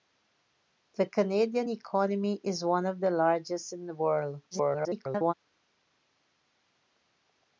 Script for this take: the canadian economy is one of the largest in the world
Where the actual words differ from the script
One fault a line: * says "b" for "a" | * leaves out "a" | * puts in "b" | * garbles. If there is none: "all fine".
* garbles